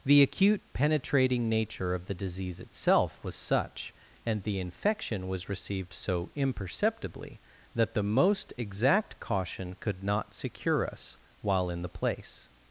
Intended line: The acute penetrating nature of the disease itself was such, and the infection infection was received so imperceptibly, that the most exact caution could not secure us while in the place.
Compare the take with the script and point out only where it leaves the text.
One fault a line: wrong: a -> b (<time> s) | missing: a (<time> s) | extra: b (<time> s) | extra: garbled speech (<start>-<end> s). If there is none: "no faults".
missing: infection (5.3 s)